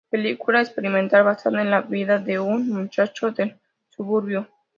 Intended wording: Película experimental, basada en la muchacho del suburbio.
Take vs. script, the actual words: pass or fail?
fail